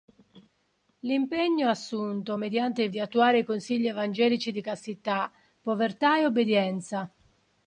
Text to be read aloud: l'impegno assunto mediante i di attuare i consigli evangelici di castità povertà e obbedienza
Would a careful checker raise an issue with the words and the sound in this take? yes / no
no